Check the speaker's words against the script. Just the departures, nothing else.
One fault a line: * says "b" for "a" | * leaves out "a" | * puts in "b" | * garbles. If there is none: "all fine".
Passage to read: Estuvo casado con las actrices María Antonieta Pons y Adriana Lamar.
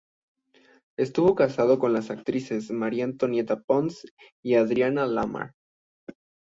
all fine